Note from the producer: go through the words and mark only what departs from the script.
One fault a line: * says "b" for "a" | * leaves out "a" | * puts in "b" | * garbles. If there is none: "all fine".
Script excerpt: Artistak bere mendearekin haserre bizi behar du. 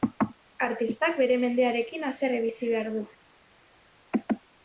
all fine